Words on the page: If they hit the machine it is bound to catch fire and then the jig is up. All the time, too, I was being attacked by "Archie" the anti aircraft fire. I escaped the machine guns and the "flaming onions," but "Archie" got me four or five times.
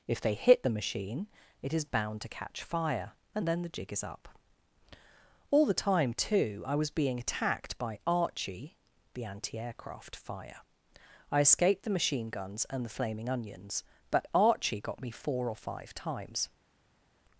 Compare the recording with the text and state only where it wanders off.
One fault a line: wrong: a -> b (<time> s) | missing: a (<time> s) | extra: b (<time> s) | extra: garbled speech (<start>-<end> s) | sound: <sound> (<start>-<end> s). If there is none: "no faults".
no faults